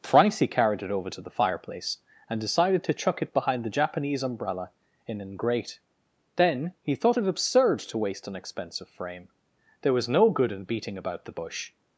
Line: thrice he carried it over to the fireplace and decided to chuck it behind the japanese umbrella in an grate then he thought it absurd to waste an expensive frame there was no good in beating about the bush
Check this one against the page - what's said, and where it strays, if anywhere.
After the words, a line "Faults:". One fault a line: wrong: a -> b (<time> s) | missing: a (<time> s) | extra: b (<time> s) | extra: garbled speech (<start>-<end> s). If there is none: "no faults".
thrice he carried it over to the fireplace and decided to chuck it behind the japanese umbrella in an grate then he thought it absurd to waste an expensive frame there was no good in beating about the bush
Faults:
no faults